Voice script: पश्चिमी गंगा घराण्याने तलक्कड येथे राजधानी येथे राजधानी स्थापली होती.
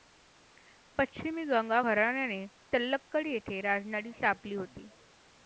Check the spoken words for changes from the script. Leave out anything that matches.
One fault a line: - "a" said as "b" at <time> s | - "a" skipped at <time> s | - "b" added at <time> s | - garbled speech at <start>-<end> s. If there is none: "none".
- "येथे राजधानी" skipped at 4.1 s